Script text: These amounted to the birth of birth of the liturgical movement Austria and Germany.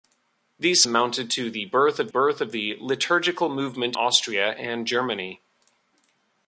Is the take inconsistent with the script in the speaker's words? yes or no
no